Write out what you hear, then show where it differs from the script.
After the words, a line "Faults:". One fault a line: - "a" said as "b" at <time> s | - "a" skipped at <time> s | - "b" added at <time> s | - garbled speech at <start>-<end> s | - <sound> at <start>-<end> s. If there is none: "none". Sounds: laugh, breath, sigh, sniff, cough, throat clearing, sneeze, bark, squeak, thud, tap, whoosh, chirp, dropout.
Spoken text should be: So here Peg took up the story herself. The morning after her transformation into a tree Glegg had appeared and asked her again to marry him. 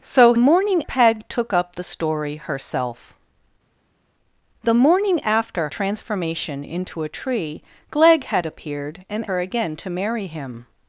So morning Peg took up the story herself. The morning after transformation into a tree Glegg had appeared and her again to marry him.
Faults:
- "here" said as "morning" at 0.4 s
- "her" skipped at 5.7 s
- "asked" skipped at 9.3 s